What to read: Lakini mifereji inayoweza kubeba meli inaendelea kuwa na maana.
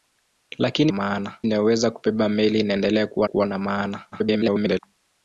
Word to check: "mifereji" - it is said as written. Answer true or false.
false